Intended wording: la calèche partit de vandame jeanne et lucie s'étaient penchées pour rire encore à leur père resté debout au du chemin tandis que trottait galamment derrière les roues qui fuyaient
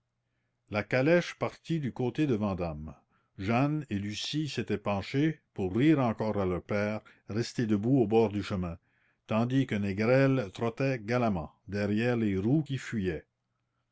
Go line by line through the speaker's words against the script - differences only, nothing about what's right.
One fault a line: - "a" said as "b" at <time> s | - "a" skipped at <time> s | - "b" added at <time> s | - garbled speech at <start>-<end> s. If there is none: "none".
- "du côté" added at 1.8 s
- "bord" added at 8.1 s
- "négrel" added at 9.8 s